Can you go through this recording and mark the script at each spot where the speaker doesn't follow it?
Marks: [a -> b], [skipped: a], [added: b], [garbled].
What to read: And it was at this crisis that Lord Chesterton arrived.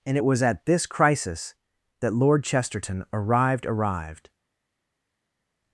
And it was at this crisis that Lord Chesterton arrived. [added: arrived]